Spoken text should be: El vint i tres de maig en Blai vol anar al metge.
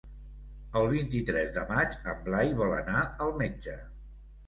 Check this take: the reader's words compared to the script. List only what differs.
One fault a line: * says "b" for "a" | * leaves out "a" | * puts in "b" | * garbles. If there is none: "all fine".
all fine